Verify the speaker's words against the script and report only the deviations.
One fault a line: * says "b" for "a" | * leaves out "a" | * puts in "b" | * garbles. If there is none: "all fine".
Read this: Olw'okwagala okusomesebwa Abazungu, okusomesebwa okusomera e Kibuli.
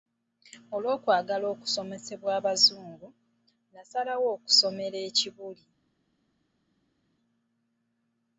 * says "nasalawo" for "okusomesebwa"